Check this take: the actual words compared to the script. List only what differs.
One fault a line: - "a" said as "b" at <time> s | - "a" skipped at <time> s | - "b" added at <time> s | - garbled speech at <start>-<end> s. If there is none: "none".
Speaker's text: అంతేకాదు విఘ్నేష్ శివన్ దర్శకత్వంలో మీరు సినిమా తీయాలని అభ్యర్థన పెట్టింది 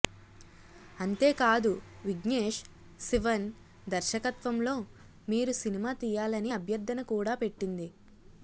- "కూడా" added at 7.1 s